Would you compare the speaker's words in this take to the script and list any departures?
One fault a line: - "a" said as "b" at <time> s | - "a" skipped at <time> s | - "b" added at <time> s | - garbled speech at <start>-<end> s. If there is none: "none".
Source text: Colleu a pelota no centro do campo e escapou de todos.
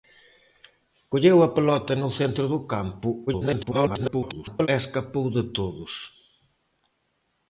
- garbled speech at 3.3-4.7 s